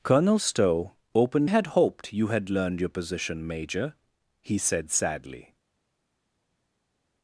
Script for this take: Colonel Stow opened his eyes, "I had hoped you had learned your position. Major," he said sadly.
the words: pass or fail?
fail